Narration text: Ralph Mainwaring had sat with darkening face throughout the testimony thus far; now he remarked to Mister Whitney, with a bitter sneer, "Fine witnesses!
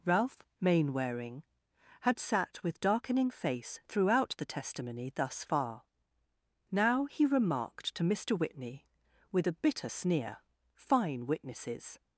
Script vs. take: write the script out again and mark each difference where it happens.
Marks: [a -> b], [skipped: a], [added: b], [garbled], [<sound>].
Ralph Mainwaring had sat with darkening face throughout the testimony thus far; now he remarked to Mister Whitney, with a bitter sneer, "Fine witnesses!